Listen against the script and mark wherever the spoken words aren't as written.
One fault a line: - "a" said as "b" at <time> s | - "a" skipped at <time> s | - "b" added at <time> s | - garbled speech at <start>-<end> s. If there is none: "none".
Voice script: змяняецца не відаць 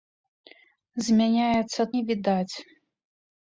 none